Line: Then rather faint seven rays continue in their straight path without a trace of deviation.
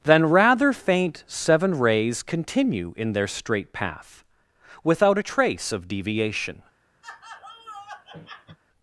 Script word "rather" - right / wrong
right